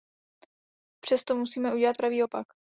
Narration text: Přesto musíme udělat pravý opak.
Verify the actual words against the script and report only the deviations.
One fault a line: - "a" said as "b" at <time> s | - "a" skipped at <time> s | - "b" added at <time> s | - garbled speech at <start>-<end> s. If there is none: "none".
none